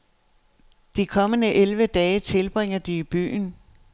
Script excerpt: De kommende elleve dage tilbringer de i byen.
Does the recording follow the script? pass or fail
pass